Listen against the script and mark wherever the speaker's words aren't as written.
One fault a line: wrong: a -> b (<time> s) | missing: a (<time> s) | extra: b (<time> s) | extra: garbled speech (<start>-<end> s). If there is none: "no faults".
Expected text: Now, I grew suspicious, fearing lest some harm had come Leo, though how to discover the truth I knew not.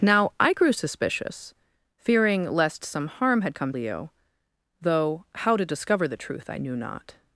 no faults